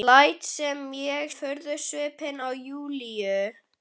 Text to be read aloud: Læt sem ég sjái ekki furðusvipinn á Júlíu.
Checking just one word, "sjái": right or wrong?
wrong